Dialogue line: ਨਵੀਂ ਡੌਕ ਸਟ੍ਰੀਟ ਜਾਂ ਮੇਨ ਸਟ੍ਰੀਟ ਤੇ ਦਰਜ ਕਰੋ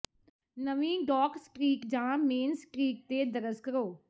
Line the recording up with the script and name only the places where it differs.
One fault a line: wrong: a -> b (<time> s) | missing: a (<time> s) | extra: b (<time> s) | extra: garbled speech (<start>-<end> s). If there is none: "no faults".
no faults